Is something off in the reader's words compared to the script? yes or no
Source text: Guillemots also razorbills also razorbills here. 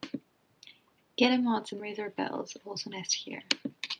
yes